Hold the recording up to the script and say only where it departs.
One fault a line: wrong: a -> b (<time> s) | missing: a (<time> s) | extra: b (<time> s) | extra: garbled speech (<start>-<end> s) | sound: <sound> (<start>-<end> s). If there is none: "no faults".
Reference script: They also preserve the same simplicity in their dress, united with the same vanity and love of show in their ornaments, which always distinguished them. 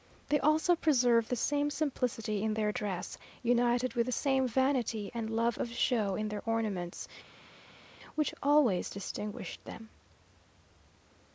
no faults